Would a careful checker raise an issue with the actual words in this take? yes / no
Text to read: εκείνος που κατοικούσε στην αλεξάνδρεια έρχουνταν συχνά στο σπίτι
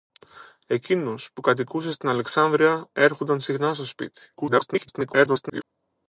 yes